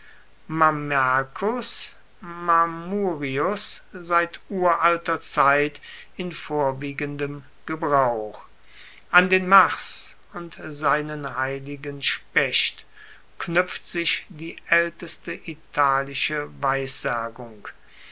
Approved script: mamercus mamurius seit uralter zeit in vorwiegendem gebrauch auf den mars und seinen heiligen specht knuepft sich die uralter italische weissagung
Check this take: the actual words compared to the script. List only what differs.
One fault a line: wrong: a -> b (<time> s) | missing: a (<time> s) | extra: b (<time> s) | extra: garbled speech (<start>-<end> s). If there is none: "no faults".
wrong: auf -> an (9.1 s)
wrong: uralter -> aelteste (14.7 s)